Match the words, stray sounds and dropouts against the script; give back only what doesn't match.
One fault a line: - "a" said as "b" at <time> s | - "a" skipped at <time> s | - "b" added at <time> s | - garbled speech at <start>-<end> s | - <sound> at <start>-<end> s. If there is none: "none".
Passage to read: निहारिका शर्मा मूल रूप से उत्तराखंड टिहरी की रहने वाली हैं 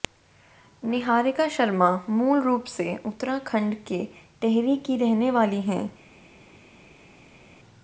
- "के" added at 3.9 s